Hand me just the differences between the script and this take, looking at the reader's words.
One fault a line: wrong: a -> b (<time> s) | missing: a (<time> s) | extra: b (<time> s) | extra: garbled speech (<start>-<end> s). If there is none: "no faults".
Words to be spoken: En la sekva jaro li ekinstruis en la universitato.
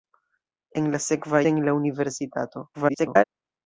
missing: jaro li ekinstruis (1.4 s)
extra: garbled speech (2.7-3.2 s)